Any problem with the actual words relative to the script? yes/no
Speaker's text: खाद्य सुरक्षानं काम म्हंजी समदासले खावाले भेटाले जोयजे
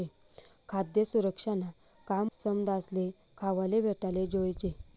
yes